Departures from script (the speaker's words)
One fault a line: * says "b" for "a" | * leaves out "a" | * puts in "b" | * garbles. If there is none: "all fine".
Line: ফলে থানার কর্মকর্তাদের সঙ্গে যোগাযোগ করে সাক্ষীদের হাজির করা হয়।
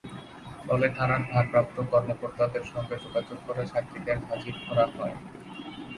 * puts in "ভারপ্রাপ্ত"